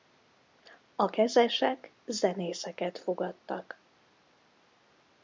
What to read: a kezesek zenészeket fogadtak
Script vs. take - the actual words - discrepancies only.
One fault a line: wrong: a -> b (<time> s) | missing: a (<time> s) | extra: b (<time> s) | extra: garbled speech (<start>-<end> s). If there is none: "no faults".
no faults